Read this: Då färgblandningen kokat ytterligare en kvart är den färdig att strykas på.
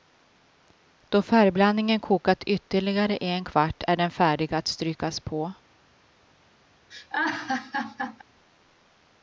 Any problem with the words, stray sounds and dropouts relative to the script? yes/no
yes